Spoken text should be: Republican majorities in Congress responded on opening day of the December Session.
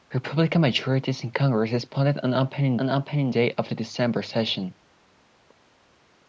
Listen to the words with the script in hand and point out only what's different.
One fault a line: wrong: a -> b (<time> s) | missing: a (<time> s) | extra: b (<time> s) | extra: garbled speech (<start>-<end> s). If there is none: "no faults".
extra: on opening (2.8 s)